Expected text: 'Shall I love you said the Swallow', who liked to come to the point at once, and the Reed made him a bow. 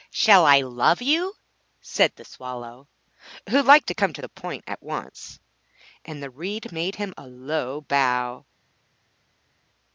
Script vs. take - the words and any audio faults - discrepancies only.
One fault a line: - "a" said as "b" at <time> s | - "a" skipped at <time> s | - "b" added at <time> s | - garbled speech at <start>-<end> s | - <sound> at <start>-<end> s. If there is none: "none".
- "low" added at 7.3 s